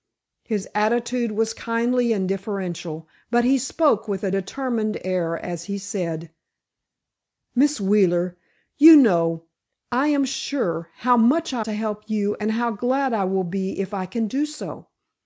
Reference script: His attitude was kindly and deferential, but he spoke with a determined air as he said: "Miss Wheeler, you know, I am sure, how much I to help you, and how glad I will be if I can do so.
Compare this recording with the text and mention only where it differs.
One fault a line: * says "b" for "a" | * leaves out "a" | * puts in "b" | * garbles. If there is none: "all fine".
all fine